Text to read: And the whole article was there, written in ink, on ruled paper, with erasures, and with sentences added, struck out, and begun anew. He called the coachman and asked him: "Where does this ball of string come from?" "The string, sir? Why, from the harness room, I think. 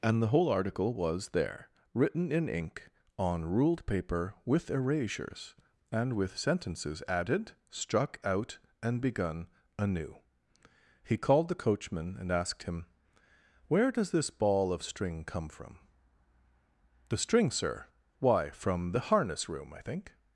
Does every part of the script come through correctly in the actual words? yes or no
yes